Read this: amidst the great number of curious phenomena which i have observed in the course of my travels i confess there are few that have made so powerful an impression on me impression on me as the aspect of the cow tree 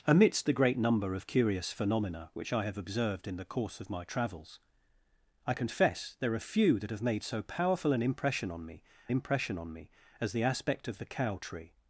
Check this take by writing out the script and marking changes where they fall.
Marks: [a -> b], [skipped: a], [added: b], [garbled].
amidst the great number of curious phenomena which i have observed in the course of my travels i confess there are few that have made so powerful an impression on me impression on me as the aspect of the cow tree